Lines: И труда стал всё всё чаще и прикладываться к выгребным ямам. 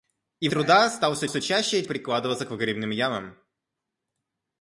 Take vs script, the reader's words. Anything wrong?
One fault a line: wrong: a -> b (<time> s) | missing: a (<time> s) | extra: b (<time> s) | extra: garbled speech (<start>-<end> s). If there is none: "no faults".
no faults